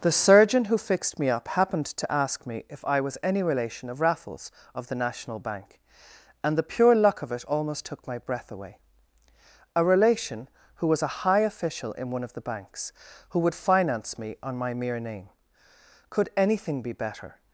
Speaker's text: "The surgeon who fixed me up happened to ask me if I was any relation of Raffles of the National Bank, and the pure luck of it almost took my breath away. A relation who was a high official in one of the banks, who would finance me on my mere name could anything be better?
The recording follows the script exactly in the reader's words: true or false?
true